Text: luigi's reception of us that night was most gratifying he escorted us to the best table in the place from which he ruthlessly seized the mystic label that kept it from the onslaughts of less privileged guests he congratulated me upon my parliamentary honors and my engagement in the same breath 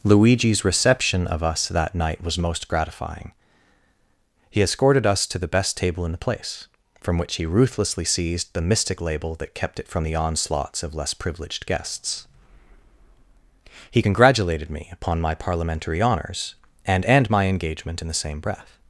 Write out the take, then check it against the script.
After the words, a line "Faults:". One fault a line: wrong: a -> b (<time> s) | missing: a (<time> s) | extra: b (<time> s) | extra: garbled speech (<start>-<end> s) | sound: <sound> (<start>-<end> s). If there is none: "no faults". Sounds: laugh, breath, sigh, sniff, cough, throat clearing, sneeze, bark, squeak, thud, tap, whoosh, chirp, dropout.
luigi's reception of us that night was most gratifying he escorted us to the best table in the place from which he ruthlessly seized the mystic label that kept it from the onslaughts of less privileged guests he congratulated me upon my parliamentary honors and and my engagement in the same breath
Faults:
extra: and (17.1 s)